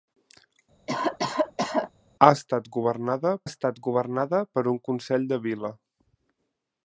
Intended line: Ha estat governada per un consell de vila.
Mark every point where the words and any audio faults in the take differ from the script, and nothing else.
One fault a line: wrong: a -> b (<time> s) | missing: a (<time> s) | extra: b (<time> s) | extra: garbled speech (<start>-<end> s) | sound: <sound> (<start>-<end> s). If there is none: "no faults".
sound: cough (0.9-1.9 s)
extra: estat governada (3.5 s)